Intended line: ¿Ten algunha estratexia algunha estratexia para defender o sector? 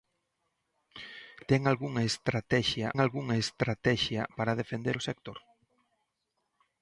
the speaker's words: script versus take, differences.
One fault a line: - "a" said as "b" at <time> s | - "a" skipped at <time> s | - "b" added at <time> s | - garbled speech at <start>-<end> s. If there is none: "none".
none